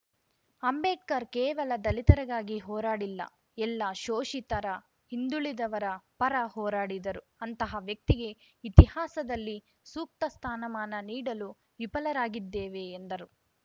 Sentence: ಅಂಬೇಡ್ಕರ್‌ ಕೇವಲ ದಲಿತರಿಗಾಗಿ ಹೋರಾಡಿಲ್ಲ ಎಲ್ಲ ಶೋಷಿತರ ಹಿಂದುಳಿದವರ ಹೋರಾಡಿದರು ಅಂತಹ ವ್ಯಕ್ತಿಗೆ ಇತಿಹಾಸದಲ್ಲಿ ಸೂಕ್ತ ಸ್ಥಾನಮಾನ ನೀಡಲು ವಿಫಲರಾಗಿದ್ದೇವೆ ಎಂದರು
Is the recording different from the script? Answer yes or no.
yes